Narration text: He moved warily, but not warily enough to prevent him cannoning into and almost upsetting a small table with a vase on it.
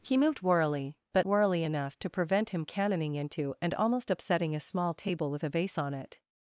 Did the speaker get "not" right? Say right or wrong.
wrong